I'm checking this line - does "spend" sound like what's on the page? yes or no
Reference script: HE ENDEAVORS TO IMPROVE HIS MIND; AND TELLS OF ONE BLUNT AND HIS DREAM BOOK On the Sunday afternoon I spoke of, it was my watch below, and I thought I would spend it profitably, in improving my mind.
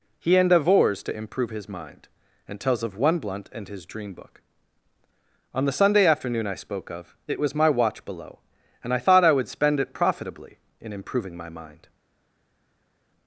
yes